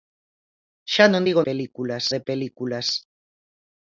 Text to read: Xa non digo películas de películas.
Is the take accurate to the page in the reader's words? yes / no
yes